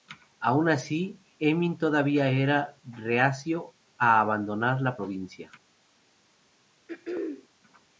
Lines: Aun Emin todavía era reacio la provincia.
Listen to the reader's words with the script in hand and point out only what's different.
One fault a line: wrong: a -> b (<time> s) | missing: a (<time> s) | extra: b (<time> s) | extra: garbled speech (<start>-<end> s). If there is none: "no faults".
extra: así (0.7 s)
extra: a abandonar (4.0 s)